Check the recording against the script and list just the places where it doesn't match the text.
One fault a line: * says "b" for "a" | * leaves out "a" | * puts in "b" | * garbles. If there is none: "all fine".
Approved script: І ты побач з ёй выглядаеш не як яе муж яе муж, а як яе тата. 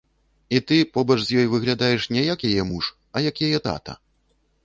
* leaves out "яе муж"